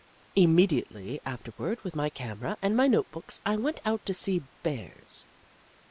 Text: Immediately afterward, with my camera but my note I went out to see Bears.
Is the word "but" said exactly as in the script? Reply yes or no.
no